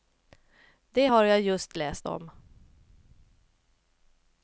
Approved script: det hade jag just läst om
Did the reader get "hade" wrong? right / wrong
wrong